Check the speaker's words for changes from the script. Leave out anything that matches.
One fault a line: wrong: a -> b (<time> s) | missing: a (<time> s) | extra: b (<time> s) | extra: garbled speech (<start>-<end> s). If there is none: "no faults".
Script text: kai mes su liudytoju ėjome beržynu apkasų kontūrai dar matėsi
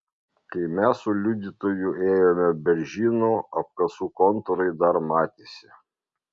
no faults